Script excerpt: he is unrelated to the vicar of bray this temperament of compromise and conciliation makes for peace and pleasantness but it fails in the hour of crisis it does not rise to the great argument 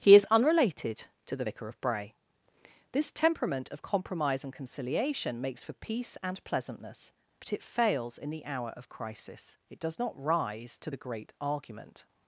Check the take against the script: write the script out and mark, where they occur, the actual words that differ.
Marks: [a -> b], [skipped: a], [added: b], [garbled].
he is unrelated to the vicar of bray this temperament of compromise and conciliation makes for peace and pleasantness but it fails in the hour of crisis it does not rise to the great argument